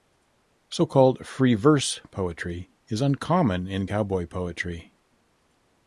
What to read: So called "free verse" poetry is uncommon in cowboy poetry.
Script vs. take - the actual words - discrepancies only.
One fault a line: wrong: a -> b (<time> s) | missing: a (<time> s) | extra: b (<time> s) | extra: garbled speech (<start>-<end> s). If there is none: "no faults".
no faults